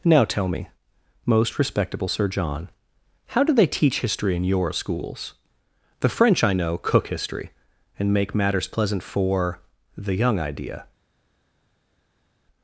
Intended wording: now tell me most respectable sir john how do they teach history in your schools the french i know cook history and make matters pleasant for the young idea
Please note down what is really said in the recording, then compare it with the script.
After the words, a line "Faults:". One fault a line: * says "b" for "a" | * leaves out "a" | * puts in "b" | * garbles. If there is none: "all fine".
now tell me most respectable sir john how do they teach history in your schools the french i know cook history and make matters pleasant for the young idea
Faults:
all fine